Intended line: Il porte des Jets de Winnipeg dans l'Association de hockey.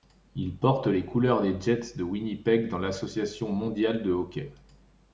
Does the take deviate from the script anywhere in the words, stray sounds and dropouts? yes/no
yes